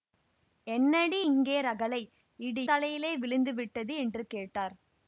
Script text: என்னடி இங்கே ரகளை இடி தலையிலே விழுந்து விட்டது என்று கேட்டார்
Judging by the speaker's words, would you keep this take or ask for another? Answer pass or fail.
pass